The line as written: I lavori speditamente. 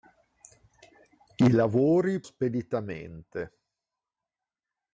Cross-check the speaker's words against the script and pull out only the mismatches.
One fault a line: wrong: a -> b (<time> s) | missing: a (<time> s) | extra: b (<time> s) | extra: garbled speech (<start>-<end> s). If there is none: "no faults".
no faults